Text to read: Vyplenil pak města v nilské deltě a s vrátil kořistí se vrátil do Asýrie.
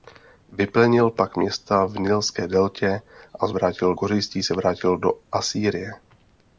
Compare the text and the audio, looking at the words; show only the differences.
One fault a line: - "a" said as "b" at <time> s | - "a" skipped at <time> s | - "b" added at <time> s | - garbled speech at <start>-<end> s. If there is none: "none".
none